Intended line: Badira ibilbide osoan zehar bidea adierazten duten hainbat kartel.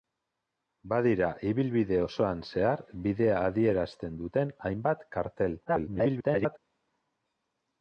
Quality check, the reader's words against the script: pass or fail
fail